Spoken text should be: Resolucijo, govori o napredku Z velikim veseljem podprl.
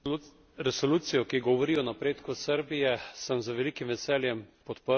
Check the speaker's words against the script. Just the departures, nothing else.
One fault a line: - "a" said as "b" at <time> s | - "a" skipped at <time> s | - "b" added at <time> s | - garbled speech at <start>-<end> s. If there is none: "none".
- "ki" added at 1.2 s
- "Srbije sem" added at 2.4 s